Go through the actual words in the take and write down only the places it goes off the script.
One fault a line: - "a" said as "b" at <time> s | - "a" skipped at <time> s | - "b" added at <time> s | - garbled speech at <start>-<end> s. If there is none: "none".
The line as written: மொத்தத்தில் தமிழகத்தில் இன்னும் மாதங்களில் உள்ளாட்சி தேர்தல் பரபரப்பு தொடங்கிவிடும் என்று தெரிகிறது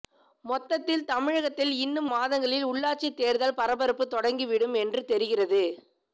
none